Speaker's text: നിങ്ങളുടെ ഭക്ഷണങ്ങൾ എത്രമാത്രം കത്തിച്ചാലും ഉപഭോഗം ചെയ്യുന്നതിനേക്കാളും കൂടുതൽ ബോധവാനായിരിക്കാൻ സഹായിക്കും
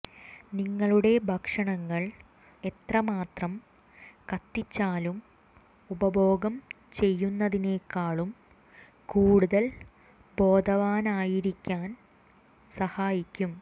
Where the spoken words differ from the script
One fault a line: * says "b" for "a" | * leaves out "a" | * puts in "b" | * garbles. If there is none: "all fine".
all fine